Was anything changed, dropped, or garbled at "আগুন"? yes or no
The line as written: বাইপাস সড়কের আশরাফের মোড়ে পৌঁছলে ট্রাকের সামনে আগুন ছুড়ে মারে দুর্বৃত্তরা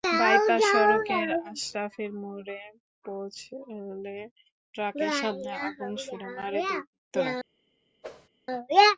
no